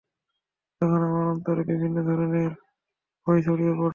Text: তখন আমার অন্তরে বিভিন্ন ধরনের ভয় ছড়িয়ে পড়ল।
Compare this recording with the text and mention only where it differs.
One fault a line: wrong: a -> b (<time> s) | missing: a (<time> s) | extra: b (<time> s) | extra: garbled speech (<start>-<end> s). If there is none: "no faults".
no faults